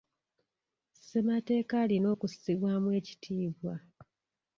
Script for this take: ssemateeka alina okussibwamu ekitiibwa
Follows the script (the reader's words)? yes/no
yes